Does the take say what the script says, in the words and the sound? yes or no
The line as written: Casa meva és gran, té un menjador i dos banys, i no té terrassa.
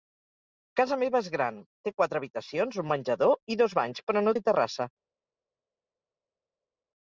no